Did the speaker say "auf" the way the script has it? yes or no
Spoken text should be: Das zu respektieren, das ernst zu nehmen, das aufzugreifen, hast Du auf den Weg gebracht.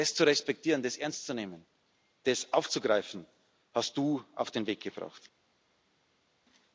yes